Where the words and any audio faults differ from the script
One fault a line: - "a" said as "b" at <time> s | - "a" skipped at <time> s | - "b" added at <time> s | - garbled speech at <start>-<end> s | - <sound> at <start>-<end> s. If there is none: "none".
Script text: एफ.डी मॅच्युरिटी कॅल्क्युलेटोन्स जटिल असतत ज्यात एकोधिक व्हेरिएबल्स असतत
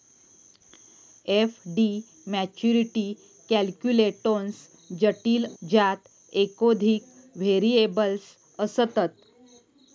- "असतत" skipped at 5.5 s